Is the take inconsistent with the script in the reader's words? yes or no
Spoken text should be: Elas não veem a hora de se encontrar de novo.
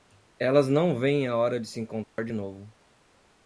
no